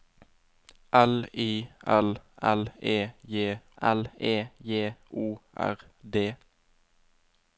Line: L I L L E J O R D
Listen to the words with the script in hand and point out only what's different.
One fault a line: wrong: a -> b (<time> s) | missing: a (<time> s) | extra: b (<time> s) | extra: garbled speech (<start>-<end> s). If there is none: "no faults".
extra: L E J (3.8 s)